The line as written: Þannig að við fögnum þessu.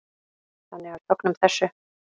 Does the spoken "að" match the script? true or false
false